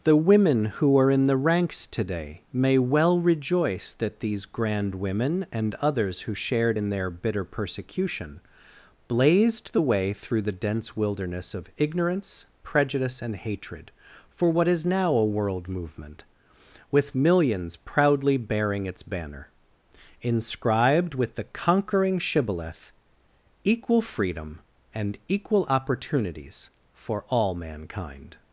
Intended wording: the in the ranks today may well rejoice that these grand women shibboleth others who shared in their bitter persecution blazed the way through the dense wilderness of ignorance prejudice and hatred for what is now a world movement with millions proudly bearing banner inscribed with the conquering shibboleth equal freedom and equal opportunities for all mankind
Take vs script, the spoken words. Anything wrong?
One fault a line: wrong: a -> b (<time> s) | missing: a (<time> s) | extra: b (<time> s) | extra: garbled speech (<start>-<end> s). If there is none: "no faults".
extra: women who are (0.1 s)
wrong: shibboleth -> and (5.5 s)
extra: its (18.8 s)